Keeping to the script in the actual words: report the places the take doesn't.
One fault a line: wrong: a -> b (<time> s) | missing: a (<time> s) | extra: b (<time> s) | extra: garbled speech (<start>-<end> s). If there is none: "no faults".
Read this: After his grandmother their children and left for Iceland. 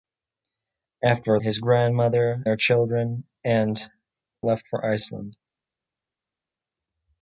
no faults